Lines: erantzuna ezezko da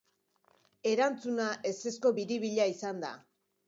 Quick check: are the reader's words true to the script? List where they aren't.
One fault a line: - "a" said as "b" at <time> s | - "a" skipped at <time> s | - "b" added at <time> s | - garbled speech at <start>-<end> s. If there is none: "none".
- "biribila izan" added at 2.2 s